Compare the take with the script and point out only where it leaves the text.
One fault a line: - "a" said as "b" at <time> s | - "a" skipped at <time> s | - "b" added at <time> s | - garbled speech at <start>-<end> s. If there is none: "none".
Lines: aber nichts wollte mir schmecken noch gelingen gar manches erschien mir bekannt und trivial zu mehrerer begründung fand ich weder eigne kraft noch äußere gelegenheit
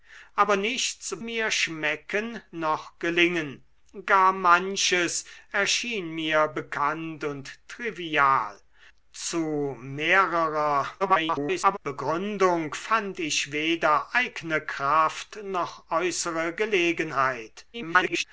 - "wollte" skipped at 1.2 s
- garbled speech at 11.0-11.8 s
- garbled speech at 17.7-18.2 s